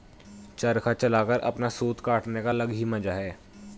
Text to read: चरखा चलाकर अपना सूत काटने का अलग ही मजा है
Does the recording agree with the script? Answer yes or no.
yes